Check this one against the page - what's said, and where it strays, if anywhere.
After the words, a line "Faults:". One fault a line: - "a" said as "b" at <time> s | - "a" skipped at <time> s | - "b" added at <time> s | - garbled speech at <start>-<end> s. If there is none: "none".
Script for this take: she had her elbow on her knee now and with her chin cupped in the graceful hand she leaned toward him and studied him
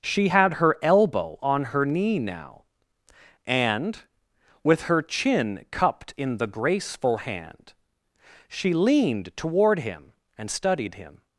she had her elbow on her knee now and with her chin cupped in the graceful hand she leaned toward him and studied him
Faults:
none